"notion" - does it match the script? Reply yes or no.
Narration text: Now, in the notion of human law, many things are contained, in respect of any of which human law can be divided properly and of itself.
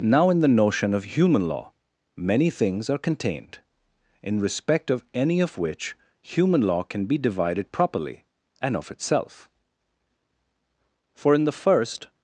yes